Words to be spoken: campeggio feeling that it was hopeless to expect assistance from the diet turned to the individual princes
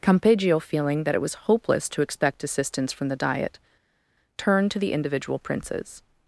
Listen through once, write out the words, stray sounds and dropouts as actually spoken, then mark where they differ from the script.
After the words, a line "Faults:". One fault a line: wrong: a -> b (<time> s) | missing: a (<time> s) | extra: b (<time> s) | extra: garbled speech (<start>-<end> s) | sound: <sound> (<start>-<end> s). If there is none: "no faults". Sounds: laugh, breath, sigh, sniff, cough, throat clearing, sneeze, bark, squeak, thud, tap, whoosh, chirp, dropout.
campeggio feeling that it was hopeless to expect assistance from the diet turned to the individual princes
Faults:
no faults